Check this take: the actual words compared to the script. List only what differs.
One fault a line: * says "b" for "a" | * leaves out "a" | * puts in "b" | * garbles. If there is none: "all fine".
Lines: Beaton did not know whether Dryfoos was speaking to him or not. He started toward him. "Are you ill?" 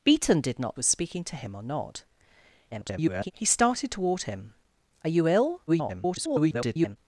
* leaves out "know whether Dryfoos"
* garbles
* garbles